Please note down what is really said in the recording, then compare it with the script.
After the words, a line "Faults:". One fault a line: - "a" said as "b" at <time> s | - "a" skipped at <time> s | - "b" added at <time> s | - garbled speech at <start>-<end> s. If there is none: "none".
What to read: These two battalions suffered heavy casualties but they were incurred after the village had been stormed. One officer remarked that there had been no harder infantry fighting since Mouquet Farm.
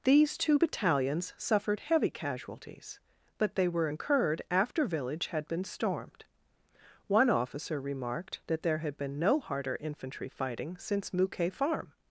These two battalions suffered heavy casualties but they were incurred after village had been stormed. One officer remarked that there had been no harder infantry fighting since Mouquet Farm.
Faults:
- "the" skipped at 4.9 s